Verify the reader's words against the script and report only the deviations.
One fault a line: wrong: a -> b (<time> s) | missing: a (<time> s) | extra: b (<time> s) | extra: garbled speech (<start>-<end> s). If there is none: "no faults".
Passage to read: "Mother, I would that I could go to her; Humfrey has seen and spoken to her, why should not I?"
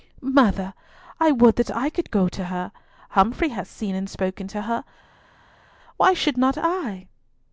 no faults